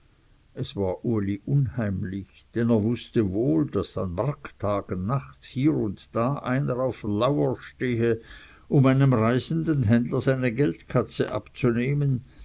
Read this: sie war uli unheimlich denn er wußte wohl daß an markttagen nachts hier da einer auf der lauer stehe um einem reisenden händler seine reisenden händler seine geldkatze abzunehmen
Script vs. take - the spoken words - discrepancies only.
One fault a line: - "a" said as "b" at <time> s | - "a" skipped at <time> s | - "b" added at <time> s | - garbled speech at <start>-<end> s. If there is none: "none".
- "sie" said as "es" at 0.6 s
- "und" added at 5.8 s
- "reisenden händler seine" skipped at 10.5 s